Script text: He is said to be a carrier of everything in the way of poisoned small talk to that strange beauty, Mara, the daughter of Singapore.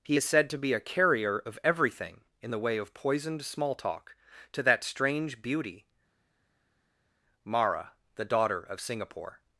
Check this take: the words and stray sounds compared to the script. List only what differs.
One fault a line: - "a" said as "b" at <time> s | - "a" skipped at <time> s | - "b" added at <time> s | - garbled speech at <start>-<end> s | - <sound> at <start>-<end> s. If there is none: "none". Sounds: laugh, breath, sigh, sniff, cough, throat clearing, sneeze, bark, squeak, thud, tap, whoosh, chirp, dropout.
none